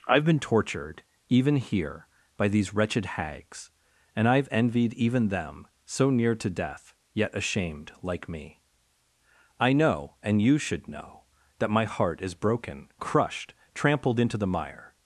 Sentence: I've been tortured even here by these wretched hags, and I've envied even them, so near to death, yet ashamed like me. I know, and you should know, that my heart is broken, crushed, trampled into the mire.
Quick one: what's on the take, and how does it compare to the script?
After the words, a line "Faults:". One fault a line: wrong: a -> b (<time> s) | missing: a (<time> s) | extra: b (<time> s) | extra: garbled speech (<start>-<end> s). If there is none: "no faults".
I've been tortured even here by these wretched hags, and I've envied even them, so near to death, yet ashamed like me. I know, and you should know, that my heart is broken, crushed, trampled into the mire.
Faults:
no faults